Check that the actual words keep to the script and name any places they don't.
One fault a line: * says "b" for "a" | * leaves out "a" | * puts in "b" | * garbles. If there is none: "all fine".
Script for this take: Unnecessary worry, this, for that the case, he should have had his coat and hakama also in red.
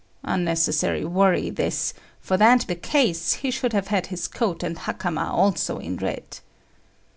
all fine